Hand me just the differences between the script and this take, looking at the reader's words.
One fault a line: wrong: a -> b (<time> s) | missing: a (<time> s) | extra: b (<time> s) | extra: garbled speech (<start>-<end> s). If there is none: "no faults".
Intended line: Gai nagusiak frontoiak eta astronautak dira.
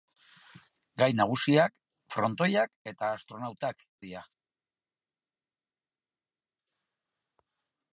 no faults